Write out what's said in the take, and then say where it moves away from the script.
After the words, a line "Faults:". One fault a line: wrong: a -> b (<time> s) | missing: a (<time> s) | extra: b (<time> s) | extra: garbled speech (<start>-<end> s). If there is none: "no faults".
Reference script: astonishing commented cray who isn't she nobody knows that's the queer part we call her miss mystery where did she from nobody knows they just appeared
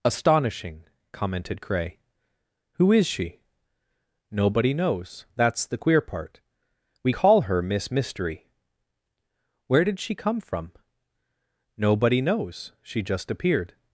astonishing commented cray who is she nobody knows that's the queer part we call her miss mystery where did she come from nobody knows she just appeared
Faults:
wrong: isn't -> is (2.9 s)
extra: come (10.1 s)
wrong: they -> she (12.8 s)